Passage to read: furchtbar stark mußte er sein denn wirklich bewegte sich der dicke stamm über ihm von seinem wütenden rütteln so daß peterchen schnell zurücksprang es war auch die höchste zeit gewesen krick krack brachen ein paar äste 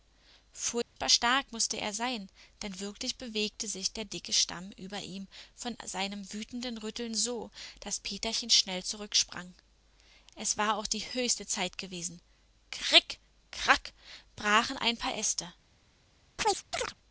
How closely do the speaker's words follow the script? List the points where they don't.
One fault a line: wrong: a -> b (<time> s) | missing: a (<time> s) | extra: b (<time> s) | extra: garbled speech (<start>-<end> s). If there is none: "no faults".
no faults